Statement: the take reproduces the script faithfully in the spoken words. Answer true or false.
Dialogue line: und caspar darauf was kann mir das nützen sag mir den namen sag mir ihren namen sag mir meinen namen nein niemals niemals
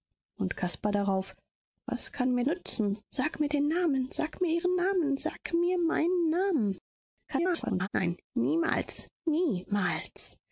false